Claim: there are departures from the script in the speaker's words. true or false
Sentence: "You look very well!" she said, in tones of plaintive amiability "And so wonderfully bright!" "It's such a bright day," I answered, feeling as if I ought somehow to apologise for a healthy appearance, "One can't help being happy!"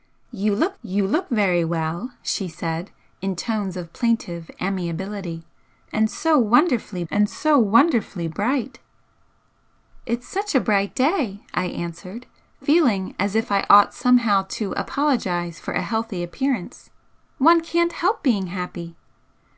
true